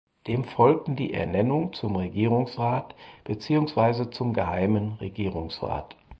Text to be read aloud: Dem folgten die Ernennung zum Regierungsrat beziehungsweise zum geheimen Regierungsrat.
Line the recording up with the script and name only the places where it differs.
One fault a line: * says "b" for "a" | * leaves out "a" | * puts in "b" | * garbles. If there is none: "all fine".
all fine